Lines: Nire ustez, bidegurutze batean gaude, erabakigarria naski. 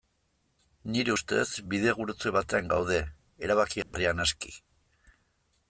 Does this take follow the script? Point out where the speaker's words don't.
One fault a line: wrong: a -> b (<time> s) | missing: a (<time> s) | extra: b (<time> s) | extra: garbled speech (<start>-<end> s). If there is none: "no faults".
no faults